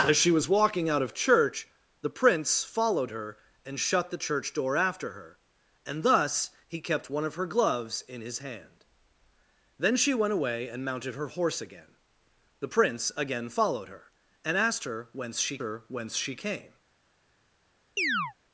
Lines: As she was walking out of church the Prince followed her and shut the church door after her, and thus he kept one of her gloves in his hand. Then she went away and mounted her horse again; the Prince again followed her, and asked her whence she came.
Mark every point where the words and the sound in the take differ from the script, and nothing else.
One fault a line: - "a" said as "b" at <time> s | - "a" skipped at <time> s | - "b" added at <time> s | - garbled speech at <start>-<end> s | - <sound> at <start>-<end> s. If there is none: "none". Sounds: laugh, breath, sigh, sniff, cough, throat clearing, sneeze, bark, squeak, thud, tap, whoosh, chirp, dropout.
- "her whence she" added at 15.6 s
- chirp at 18.0-18.3 s